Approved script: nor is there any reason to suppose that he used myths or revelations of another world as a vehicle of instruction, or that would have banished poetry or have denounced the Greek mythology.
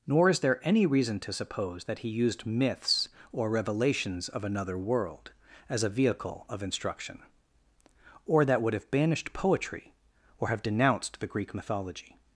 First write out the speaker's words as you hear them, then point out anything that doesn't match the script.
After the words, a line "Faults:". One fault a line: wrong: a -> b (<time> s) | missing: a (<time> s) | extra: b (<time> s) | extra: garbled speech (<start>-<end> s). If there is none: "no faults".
nor is there any reason to suppose that he used myths or revelations of another world as a vehicle of instruction, or that would have banished poetry or have denounced the Greek mythology.
Faults:
no faults